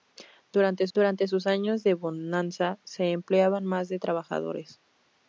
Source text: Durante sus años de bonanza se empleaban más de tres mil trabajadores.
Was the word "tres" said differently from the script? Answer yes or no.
yes